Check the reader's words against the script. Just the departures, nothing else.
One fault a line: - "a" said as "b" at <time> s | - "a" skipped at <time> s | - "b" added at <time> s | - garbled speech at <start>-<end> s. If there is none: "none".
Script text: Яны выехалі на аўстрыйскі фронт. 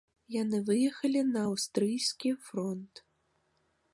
none